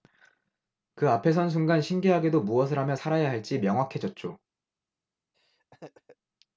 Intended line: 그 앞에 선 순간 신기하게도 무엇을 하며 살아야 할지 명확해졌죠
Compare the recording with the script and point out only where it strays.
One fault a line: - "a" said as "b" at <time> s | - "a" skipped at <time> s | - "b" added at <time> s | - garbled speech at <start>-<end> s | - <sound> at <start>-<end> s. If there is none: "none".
- laugh at 5.3-6.2 s